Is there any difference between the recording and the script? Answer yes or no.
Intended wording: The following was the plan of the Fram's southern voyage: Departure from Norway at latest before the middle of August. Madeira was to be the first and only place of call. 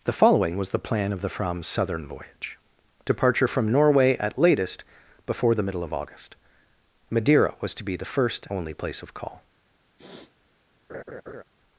yes